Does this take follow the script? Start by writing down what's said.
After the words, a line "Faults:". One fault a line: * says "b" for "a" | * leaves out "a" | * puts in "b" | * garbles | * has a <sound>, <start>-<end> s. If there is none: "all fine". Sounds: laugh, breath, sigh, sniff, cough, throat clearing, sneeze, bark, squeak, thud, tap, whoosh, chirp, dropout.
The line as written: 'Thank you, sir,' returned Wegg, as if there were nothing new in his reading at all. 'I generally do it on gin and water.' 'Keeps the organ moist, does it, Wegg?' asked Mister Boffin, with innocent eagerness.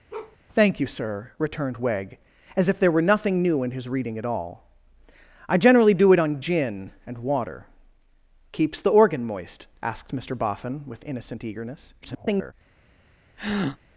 'Thank you, sir,' returned Wegg, as if there were nothing new in his reading at all. 'I generally do it on gin and water.' 'Keeps the organ moist?' asked Mister Boffin, with innocent eagerness. [garbled]
Faults:
* has a bark, 0.1-0.4 s
* leaves out "does it Wegg"
* garbles
* has a breath, 13.4-13.8 s